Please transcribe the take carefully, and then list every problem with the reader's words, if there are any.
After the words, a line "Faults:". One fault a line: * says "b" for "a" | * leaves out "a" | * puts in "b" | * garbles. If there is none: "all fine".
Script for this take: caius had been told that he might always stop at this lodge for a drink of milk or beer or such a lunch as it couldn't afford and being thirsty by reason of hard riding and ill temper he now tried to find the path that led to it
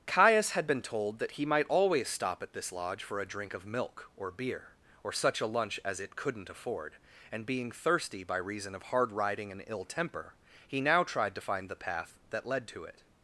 caius had been told that he might always stop at this lodge for a drink of milk or beer or such a lunch as it couldn't afford and being thirsty by reason of hard riding and ill temper he now tried to find the path that led to it
Faults:
all fine